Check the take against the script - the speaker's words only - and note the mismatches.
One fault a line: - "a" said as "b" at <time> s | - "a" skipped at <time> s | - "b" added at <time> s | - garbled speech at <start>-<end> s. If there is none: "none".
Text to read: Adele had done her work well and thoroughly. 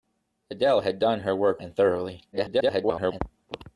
- "well" skipped at 1.6 s
- garbled speech at 2.3-3.2 s